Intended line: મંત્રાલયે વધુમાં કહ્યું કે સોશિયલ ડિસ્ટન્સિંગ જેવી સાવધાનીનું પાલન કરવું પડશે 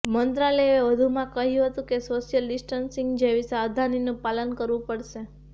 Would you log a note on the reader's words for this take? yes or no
yes